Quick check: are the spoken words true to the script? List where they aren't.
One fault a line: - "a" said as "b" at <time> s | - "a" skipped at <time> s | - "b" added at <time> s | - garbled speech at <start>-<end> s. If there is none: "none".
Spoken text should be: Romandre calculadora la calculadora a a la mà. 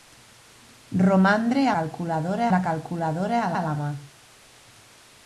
none